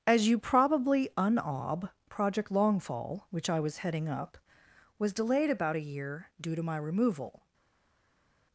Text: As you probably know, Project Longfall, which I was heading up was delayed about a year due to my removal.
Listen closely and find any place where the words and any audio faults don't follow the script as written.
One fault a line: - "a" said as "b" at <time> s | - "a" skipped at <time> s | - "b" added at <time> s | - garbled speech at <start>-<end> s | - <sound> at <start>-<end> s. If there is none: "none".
- "know" said as "unob" at 1.1 s